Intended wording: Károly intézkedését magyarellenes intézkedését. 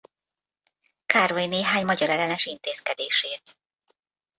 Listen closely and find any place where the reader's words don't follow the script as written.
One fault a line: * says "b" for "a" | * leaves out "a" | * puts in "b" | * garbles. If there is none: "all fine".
* says "néhány" for "intézkedését"